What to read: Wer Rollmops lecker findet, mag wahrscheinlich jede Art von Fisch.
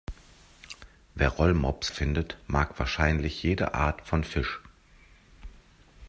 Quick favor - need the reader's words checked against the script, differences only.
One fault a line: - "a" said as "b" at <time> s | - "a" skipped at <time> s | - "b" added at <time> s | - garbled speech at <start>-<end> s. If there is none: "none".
- "lecker" skipped at 1.9 s